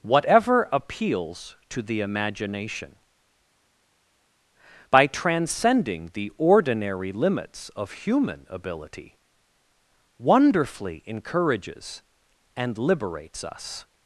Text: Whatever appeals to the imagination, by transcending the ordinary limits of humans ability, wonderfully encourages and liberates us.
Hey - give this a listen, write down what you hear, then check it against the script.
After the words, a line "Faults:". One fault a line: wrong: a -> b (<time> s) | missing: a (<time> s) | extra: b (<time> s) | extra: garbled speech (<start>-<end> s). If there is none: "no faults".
Whatever appeals to the imagination, by transcending the ordinary limits of human ability, wonderfully encourages and liberates us.
Faults:
wrong: humans -> human (7.9 s)